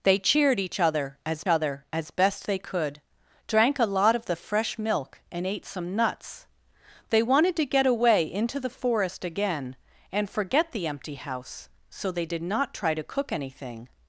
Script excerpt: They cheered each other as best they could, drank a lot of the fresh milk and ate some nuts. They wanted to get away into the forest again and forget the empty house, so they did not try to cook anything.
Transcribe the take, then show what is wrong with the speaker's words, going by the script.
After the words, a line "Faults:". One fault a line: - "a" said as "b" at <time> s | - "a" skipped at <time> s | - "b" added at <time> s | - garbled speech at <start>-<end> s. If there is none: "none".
They cheered each other as other as best they could, drank a lot of the fresh milk and ate some nuts. They wanted to get away into the forest again and forget the empty house, so they did not try to cook anything.
Faults:
- "other as" added at 1.5 s